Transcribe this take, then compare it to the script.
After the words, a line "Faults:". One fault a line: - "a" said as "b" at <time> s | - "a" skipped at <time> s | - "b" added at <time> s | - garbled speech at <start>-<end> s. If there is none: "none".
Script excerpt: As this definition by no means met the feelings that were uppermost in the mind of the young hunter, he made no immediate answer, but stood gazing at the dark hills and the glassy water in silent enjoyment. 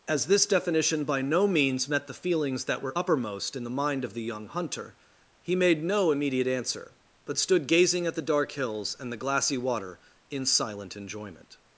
As this definition by no means met the feelings that were uppermost in the mind of the young hunter, he made no immediate answer, but stood gazing at the dark hills and the glassy water in silent enjoyment.
Faults:
none